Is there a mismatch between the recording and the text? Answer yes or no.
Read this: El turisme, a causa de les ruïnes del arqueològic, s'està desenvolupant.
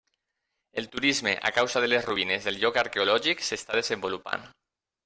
yes